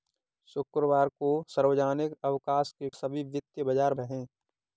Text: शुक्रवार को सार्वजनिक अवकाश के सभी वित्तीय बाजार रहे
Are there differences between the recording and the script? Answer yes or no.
no